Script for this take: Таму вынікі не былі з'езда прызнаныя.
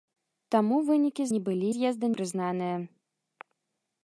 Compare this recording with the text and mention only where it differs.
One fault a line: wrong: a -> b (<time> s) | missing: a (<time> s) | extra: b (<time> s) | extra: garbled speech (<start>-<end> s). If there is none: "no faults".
no faults